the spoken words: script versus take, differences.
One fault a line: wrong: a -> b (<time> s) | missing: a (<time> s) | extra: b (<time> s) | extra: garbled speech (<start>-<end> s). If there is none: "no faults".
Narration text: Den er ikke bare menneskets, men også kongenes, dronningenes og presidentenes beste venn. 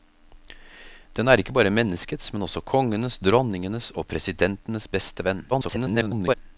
extra: garbled speech (5.5-6.3 s)